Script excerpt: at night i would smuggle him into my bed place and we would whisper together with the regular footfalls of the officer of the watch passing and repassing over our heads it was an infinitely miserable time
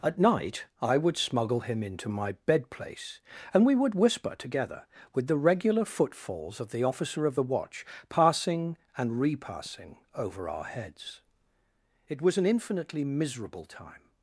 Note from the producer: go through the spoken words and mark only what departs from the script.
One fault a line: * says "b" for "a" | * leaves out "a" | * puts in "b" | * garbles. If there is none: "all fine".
all fine